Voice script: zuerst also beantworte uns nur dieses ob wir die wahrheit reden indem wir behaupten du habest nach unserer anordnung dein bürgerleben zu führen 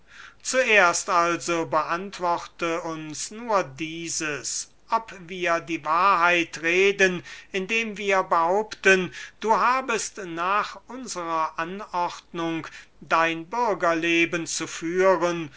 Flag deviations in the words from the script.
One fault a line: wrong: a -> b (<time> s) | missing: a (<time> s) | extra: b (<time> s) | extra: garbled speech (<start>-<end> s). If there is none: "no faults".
no faults